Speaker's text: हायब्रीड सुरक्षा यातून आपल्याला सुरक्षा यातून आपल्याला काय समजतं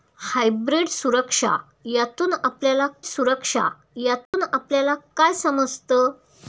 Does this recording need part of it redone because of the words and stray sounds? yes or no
yes